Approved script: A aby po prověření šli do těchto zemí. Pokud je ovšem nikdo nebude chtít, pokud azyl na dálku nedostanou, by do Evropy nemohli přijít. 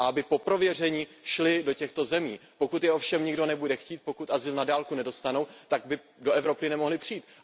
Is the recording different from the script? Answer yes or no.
yes